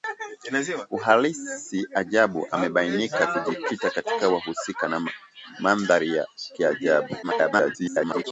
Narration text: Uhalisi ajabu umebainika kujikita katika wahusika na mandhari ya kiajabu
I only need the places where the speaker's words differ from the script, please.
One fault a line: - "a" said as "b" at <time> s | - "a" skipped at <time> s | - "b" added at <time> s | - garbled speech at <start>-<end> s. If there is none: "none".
- garbled speech at 7.2-8.2 s